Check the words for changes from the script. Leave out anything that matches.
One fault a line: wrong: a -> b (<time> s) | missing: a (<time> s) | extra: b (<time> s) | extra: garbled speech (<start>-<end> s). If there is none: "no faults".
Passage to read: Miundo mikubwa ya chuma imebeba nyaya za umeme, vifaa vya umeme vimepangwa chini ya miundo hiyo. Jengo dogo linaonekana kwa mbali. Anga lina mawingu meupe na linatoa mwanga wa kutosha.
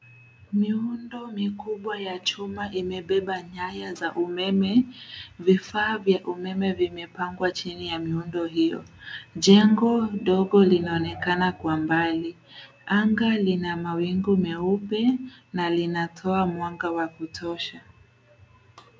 no faults